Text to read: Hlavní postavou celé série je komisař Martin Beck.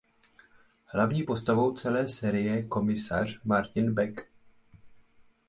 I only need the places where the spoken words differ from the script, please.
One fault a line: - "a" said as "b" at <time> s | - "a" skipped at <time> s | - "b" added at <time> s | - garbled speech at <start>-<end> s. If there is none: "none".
none